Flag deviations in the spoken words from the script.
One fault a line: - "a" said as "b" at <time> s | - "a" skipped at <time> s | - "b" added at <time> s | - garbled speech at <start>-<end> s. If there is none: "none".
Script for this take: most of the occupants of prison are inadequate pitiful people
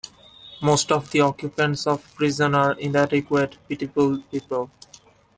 none